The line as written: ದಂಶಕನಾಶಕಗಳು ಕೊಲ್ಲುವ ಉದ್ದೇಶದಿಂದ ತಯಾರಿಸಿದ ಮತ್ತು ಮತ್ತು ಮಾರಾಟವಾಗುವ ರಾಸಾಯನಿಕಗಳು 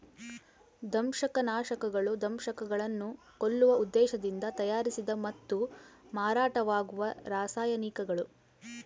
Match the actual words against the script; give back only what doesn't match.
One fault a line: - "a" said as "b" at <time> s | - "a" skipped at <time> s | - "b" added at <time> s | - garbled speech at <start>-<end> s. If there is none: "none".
- "ದಂಶಕಗಳನ್ನು" added at 2.2 s
- "ಮತ್ತು" skipped at 5.6 s